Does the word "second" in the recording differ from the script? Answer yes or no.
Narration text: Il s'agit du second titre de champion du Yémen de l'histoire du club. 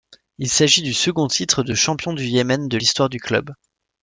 no